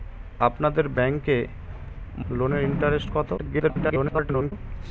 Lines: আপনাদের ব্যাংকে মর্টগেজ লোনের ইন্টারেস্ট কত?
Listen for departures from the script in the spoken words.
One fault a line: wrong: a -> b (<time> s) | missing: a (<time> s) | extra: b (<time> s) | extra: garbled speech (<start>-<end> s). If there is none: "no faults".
missing: মর্টগেজ (1.4 s)
extra: garbled speech (3.4-4.5 s)